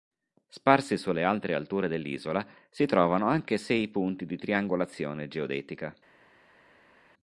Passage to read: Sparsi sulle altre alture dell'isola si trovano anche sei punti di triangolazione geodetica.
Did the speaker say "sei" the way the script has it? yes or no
yes